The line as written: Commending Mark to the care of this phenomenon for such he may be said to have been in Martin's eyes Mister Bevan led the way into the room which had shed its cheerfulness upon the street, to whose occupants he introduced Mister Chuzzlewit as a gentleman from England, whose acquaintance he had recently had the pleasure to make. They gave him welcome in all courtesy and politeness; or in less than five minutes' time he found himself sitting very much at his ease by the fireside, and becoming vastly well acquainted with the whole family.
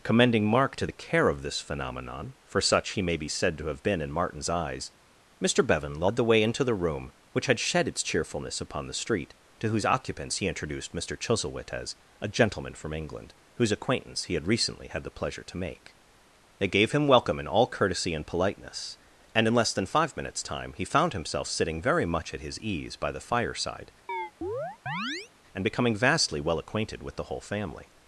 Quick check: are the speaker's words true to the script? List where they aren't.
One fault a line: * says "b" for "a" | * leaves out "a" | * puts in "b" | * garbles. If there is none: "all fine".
* says "and" for "or"